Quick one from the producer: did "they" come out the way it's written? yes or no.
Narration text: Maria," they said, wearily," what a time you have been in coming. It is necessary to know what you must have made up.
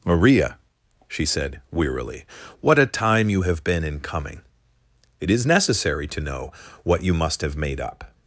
no